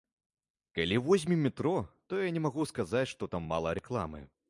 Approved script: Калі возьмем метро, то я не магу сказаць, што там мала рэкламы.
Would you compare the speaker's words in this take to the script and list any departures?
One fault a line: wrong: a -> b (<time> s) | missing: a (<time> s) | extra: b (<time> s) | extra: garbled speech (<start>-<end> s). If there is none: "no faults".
no faults